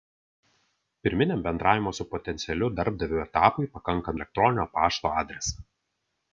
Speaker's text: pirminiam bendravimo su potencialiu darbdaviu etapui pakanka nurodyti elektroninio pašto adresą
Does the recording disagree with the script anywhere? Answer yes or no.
yes